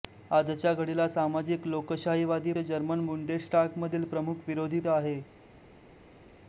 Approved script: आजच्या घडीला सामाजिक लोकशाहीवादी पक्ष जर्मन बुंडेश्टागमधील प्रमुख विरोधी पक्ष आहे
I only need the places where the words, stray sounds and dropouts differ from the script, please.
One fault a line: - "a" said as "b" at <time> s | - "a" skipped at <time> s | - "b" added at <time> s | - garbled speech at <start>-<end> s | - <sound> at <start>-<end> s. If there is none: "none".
- "पक्ष" skipped at 2.5 s
- "पक्ष" skipped at 4.8 s